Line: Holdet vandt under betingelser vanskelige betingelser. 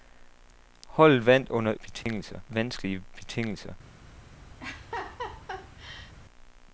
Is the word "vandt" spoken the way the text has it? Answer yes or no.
yes